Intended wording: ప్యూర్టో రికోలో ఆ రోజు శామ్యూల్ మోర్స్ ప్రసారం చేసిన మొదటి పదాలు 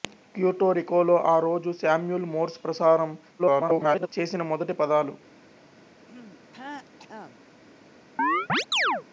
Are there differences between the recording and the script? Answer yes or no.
yes